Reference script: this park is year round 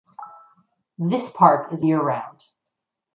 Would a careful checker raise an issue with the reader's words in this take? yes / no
no